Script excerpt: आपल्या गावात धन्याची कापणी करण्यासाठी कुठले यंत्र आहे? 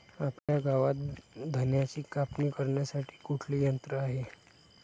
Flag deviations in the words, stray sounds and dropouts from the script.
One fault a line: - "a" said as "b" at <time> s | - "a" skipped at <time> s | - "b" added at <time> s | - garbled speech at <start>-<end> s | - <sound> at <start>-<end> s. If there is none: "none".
- dropout at 0.4-0.5 s